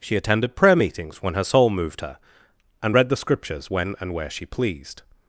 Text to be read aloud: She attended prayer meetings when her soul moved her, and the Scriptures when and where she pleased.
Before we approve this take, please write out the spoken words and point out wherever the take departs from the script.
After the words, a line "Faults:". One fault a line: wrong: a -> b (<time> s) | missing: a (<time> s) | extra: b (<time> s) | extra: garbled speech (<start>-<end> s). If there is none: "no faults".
She attended prayer meetings when her soul moved her, and read the Scriptures when and where she pleased.
Faults:
extra: read (2.9 s)